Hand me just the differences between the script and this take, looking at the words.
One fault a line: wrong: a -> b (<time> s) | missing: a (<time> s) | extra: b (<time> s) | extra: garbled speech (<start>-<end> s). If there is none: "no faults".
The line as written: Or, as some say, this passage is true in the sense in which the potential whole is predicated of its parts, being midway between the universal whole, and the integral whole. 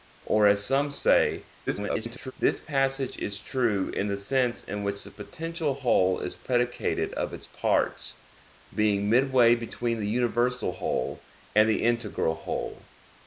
extra: garbled speech (1.7-2.3 s)